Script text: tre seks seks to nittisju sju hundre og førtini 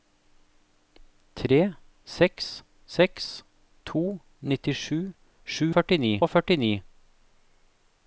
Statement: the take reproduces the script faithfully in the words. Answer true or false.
false